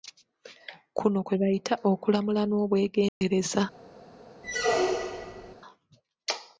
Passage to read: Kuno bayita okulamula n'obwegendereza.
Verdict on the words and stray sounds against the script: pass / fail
fail